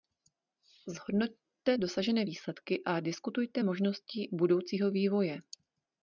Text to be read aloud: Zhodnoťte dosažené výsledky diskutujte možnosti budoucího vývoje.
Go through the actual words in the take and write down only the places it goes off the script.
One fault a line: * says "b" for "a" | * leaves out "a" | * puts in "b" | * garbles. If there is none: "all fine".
* puts in "a"